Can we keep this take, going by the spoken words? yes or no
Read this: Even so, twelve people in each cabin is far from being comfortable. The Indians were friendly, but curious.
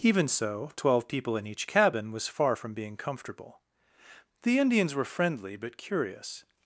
no